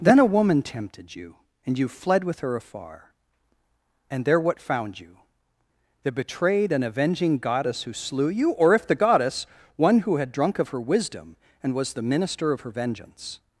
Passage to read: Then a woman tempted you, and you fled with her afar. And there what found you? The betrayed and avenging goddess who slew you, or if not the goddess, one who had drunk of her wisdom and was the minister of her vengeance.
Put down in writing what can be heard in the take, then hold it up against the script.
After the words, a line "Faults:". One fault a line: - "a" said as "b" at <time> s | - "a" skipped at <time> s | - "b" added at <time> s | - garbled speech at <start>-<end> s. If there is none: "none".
Then a woman tempted you, and you fled with her afar. And there what found you? The betrayed and avenging goddess who slew you, or if the goddess, one who had drunk of her wisdom and was the minister of her vengeance.
Faults:
- "not" skipped at 8.9 s